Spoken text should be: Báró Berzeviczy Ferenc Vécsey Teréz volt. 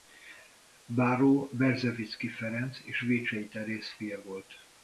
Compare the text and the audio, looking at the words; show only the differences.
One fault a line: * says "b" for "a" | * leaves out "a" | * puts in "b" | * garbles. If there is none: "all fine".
* puts in "és"
* puts in "fia"